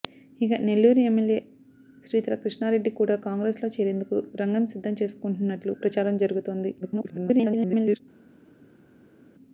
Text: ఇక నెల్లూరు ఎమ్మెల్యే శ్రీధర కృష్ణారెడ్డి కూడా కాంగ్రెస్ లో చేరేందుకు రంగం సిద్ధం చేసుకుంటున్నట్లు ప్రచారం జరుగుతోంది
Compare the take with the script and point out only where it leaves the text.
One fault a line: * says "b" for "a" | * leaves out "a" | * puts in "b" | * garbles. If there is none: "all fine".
* garbles